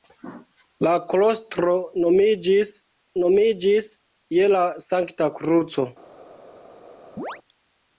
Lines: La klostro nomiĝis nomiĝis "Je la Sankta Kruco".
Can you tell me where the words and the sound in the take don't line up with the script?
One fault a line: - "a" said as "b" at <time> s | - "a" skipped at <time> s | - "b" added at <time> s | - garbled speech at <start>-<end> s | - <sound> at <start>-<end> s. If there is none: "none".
- chirp at 7.2-7.4 s